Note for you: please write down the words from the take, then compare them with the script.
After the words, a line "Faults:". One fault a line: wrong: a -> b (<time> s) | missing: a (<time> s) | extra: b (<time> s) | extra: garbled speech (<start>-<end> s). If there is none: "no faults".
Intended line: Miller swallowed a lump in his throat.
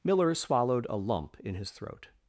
Miller swallowed a lump in his throat.
Faults:
no faults